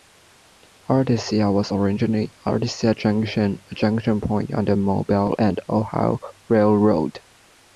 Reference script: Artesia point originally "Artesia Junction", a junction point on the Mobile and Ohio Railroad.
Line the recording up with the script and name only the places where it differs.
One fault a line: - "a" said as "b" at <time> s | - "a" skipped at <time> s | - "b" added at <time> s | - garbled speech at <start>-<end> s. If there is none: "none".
- "point" said as "was" at 1.5 s